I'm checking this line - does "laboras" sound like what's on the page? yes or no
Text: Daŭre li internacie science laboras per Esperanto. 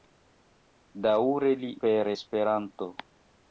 no